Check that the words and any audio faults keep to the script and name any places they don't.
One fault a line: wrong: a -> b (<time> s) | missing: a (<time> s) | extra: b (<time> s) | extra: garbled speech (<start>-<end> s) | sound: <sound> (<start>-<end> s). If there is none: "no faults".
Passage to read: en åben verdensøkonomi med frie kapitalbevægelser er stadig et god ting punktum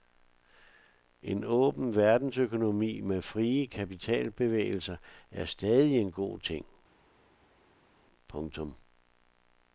wrong: et -> en (6.0 s)